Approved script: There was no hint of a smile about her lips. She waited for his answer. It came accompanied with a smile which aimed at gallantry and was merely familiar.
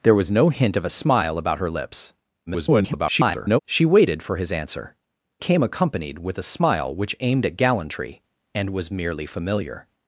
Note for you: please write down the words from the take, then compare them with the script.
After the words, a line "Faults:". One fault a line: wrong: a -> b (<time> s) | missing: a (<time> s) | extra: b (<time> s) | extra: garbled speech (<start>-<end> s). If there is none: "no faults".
There was no hint of a smile about her lips. [garbled] She waited for his answer. Came accompanied with a smile which aimed at gallantry and was merely familiar.
Faults:
extra: garbled speech (2.5-3.6 s)
missing: It (4.9 s)